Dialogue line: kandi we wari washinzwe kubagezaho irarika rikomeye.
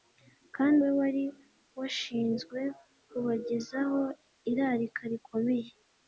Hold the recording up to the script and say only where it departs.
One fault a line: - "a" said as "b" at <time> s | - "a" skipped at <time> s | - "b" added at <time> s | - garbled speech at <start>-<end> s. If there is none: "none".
none